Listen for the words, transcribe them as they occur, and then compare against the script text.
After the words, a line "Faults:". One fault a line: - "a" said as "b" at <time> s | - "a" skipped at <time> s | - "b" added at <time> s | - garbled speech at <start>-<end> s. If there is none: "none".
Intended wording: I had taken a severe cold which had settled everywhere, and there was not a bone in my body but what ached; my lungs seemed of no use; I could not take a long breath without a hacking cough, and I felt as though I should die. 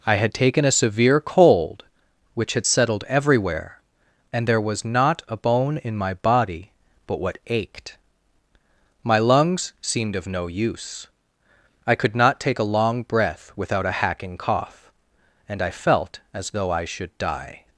I had taken a severe cold which had settled everywhere, and there was not a bone in my body but what ached; my lungs seemed of no use; I could not take a long breath without a hacking cough, and I felt as though I should die.
Faults:
none